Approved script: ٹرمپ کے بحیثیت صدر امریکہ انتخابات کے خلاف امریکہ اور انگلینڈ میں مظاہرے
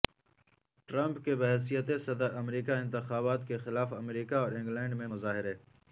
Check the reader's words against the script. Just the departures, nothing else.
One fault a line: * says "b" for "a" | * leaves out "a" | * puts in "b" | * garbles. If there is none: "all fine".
all fine